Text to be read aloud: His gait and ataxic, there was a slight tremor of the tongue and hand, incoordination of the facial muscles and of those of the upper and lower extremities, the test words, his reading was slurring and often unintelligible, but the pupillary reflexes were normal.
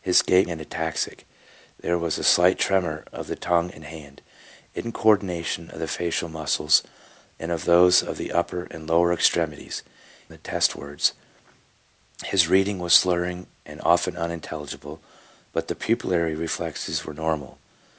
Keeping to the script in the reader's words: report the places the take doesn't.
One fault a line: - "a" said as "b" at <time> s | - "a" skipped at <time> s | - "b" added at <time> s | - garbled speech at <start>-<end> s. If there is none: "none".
none